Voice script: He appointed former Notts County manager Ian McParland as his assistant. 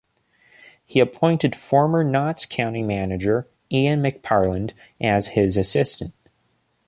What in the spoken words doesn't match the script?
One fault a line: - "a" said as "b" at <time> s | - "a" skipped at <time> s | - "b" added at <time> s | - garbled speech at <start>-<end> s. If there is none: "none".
none